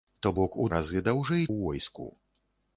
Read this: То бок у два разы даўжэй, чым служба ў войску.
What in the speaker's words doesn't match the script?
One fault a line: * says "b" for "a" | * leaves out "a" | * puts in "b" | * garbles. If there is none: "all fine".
* leaves out "два"
* leaves out "чым служба"